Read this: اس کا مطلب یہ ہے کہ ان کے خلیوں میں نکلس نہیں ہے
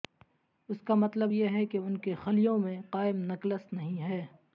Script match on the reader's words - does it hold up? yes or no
no